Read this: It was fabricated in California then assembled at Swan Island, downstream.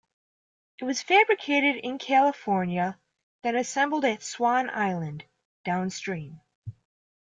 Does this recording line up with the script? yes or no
yes